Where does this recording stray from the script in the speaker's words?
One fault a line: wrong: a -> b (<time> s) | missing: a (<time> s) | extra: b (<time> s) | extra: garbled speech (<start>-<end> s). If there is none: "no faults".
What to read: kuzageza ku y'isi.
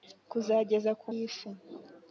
no faults